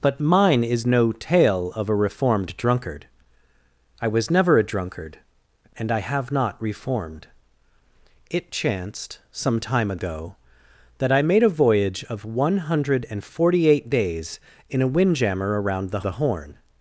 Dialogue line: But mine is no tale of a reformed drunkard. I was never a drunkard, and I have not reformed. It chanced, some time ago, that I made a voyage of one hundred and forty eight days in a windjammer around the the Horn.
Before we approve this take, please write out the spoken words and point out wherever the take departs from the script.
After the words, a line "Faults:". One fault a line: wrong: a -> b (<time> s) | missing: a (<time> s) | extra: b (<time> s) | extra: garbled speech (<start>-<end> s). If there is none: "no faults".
But mine is no tale of a reformed drunkard. I was never a drunkard, and I have not reformed. It chanced, some time ago, that I made a voyage of one hundred and forty eight days in a windjammer around the the Horn.
Faults:
no faults